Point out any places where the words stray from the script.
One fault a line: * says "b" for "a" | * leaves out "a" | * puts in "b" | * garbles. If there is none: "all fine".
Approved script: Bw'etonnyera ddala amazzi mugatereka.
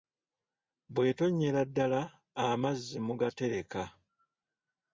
all fine